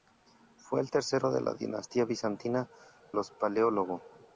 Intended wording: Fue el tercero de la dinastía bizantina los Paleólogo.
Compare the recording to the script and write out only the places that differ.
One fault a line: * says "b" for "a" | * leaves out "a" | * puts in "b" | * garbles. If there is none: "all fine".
all fine